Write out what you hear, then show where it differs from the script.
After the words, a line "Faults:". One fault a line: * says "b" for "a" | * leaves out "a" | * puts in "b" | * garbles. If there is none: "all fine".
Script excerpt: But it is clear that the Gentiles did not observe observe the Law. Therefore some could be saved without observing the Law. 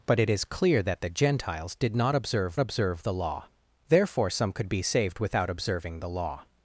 But it is clear that the Gentiles did not observe observe the Law. Therefore some could be saved without observing the Law.
Faults:
all fine